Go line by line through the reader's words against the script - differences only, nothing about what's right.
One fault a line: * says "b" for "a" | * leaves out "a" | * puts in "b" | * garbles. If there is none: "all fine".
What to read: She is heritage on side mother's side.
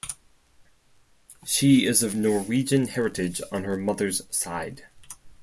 * puts in "of Norwegian"
* says "her" for "side"